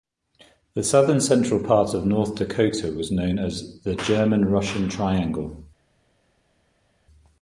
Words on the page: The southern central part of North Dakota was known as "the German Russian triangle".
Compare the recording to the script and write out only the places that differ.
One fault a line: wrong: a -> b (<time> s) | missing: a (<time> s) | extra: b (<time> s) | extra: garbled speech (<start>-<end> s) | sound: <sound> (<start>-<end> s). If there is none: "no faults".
no faults